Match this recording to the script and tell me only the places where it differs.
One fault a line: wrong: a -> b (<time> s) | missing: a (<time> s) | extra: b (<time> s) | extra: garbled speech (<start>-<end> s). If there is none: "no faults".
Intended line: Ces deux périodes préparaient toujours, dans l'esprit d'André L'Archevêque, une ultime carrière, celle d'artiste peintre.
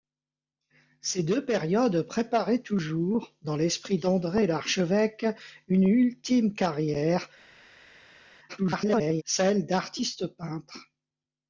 extra: garbled speech (8.5-9.2 s)